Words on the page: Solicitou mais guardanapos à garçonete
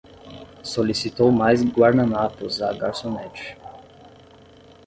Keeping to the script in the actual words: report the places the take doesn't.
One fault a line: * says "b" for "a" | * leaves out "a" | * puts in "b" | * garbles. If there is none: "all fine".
all fine